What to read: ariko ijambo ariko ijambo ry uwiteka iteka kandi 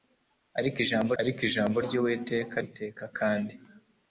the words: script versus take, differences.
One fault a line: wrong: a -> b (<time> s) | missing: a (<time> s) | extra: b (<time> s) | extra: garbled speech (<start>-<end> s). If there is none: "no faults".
no faults